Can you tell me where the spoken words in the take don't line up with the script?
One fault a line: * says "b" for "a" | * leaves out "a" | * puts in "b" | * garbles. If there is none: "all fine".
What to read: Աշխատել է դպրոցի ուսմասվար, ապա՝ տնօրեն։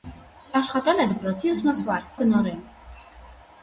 * leaves out "ապա"